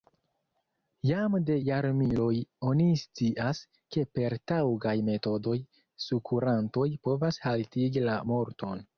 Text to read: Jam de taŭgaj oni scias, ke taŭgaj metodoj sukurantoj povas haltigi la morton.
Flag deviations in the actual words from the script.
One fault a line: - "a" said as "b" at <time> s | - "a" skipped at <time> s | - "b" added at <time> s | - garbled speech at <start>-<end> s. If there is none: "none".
- "taŭgaj" said as "jarmiloj" at 1.6 s
- "per" added at 4.2 s